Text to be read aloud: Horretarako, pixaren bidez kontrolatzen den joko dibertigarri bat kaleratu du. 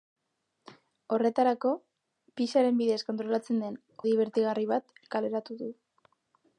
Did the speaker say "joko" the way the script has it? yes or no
no